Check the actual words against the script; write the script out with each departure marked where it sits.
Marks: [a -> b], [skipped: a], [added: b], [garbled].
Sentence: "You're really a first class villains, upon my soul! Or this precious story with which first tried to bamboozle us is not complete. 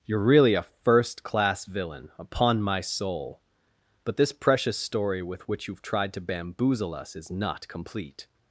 "You're really a first class [villains, -> villain] upon my soul! [Or -> But] this precious story with which [first -> you've] tried to bamboozle us is not complete.